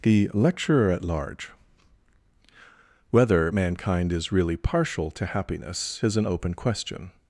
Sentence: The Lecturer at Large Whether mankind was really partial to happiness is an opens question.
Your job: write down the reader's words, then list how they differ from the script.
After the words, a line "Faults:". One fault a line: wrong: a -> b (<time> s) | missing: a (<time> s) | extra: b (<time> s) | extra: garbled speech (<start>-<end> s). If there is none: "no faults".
The Lecturer at Large Whether mankind is really partial to happiness is an open question.
Faults:
wrong: was -> is (4.1 s)
wrong: opens -> open (6.3 s)